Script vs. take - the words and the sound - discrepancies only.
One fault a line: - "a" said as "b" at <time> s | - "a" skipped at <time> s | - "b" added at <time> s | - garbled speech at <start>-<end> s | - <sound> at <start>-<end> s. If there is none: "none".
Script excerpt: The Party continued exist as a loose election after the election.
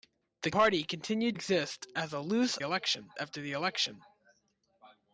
none